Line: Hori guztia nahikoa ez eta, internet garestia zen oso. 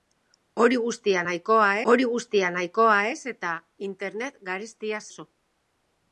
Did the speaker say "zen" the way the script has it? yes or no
no